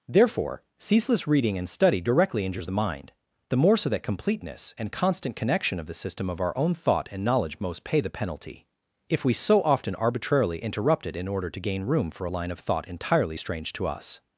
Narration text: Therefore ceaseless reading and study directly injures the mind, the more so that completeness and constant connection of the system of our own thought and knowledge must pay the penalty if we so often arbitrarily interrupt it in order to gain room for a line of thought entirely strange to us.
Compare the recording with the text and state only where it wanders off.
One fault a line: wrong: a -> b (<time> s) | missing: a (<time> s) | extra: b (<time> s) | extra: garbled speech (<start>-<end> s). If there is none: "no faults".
wrong: must -> most (7.6 s)